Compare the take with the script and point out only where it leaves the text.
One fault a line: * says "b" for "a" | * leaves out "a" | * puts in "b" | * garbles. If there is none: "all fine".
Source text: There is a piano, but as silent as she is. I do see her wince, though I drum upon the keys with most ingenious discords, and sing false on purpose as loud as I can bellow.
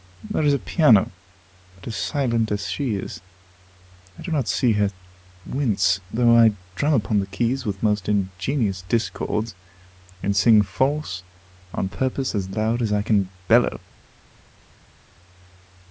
* puts in "not"